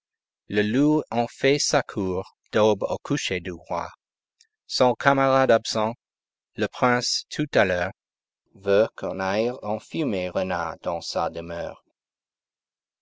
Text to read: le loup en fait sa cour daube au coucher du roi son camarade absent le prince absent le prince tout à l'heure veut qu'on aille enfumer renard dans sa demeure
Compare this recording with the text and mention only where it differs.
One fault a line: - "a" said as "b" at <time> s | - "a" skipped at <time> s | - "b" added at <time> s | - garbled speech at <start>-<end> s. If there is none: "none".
- "absent le prince" skipped at 7.2 s